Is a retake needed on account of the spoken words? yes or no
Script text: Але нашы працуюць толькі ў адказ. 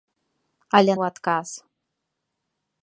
yes